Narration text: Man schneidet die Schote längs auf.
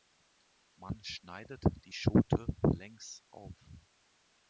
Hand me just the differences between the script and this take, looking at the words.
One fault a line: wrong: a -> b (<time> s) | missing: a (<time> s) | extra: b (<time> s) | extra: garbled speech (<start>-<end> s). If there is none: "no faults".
no faults